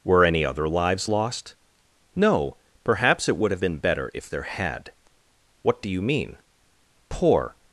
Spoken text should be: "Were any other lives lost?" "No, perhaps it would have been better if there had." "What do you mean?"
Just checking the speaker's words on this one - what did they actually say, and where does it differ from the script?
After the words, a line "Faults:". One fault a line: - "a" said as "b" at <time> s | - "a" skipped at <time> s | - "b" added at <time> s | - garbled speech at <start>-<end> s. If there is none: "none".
"Were any other lives lost?" "No, perhaps it would have been better if there had." "What do you mean?" "Poor
Faults:
- "Poor" added at 7.1 s